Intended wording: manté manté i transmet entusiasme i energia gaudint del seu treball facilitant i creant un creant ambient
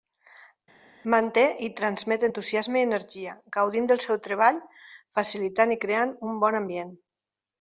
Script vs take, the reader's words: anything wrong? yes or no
yes